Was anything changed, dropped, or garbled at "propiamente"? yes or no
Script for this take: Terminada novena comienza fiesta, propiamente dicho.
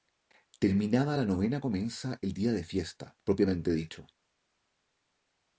no